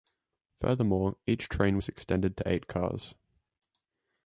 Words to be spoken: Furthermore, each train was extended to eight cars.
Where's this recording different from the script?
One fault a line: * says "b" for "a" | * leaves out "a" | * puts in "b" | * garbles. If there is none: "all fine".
all fine